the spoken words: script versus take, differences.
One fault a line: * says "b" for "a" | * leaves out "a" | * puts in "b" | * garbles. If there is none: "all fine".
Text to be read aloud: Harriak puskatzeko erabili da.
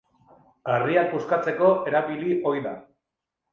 * puts in "ohi"